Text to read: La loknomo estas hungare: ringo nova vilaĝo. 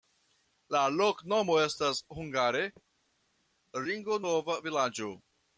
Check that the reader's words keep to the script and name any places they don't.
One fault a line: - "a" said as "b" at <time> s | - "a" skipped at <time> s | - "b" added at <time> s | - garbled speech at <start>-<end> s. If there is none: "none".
none